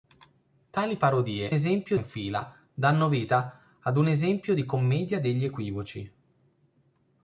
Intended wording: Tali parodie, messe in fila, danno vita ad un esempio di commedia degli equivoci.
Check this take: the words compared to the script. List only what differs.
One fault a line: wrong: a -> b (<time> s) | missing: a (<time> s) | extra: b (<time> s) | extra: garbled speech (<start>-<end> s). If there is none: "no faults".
wrong: messe -> esempio (1.5 s)